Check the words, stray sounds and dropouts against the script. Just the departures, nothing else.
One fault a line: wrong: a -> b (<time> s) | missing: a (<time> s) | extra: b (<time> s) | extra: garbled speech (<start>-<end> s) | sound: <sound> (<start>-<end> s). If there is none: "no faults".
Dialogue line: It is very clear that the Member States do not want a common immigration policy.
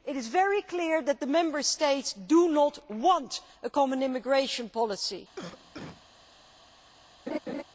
sound: cough (5.4-6.1 s)
sound: laugh (7.3-7.6 s)